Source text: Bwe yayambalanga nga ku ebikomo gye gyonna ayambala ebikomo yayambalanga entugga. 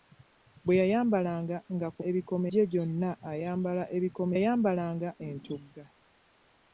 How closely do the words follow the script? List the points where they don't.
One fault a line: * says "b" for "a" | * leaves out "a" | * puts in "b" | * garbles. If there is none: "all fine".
all fine